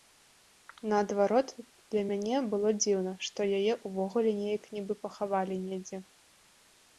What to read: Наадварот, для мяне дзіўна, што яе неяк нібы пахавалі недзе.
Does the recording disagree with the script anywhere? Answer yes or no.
yes